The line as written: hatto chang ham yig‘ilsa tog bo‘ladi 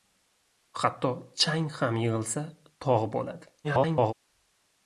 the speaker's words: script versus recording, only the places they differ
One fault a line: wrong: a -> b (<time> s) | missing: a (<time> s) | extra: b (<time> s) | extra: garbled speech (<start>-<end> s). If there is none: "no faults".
extra: garbled speech (3.6-4.1 s)